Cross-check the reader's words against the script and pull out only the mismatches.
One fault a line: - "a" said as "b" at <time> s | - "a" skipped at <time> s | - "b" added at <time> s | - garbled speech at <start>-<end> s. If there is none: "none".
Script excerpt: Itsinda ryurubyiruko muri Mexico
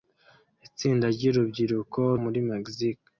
none